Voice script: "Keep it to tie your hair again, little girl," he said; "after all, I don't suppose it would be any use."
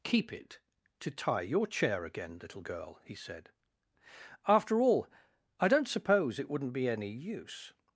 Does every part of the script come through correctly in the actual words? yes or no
no